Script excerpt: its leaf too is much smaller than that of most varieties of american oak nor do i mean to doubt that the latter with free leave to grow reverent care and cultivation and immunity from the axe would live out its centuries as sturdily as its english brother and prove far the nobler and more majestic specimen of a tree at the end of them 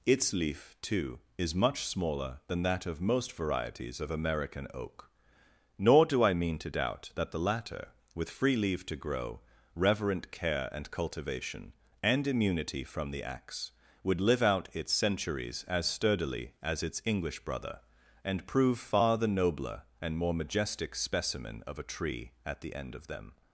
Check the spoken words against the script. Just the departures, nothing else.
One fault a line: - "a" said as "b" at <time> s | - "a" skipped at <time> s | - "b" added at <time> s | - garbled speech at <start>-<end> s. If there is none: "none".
none